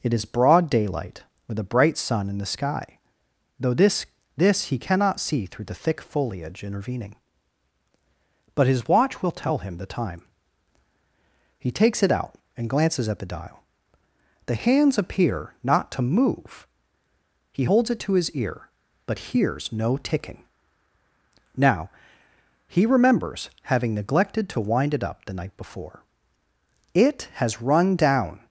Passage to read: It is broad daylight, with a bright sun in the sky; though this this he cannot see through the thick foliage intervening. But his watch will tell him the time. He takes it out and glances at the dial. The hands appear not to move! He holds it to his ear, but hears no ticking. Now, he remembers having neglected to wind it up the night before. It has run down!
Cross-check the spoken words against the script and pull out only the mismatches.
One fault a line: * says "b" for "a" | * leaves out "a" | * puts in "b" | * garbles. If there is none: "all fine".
all fine